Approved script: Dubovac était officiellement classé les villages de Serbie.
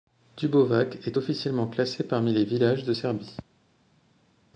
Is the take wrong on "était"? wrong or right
wrong